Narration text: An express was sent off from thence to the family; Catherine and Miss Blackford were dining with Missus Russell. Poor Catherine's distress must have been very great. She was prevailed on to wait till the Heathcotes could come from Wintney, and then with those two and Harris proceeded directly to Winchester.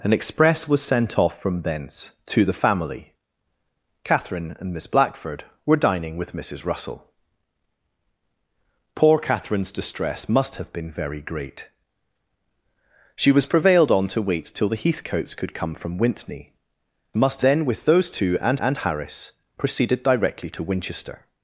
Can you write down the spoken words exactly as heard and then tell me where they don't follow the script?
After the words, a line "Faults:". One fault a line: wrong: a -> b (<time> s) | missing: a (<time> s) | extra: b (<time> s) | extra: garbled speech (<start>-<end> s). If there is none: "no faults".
An express was sent off from thence to the family; Catherine and Miss Blackford were dining with Missus Russell. Poor Catherine's distress must have been very great. She was prevailed on to wait till the Heathcotes could come from Wintney, must then with those two and and Harris proceeded directly to Winchester.
Faults:
wrong: and -> must (17.1 s)
extra: and (18.6 s)